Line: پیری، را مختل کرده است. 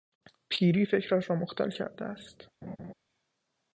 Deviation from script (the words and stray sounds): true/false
true